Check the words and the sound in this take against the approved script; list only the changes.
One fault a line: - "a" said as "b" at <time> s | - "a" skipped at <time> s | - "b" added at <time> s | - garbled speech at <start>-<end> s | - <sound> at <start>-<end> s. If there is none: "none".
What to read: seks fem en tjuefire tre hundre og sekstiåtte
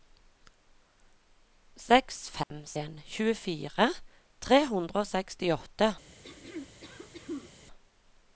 - dropout at 2.4-2.5 s
- throat clearing at 6.2-7.5 s